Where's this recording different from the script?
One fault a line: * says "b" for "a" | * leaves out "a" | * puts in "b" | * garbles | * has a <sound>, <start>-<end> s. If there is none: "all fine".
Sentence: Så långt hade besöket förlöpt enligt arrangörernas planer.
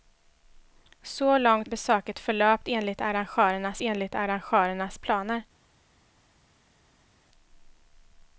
* leaves out "hade"
* puts in "enligt arrangörernas"